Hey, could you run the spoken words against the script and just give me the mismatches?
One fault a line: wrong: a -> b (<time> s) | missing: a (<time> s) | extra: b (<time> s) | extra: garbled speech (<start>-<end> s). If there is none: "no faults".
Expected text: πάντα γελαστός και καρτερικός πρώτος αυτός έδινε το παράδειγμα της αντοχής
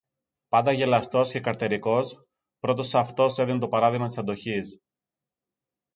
no faults